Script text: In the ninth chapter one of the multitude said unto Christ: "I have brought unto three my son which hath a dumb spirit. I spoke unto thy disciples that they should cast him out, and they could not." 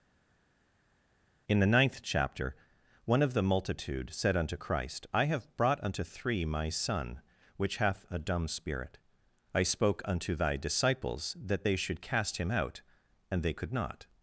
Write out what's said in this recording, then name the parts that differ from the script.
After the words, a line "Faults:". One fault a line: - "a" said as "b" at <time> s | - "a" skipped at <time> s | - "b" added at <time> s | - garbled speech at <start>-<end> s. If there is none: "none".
In the ninth chapter one of the multitude said unto Christ: "I have brought unto three my son which hath a dumb spirit. I spoke unto thy disciples that they should cast him out, and they could not."
Faults:
none